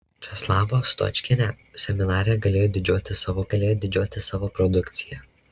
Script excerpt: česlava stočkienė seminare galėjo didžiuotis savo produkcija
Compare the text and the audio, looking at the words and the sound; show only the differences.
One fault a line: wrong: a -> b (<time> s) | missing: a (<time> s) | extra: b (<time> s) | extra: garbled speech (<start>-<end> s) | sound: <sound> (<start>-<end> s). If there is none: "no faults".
extra: galėjo didžiuotis savo (3.5 s)